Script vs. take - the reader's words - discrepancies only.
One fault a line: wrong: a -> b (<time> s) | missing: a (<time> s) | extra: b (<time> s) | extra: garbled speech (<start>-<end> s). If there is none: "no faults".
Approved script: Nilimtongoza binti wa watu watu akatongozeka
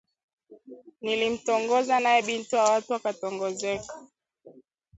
extra: naye (2.0 s)
missing: watu (2.9 s)